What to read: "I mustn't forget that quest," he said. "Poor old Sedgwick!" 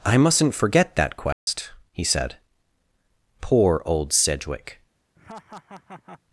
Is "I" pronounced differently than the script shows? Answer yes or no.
no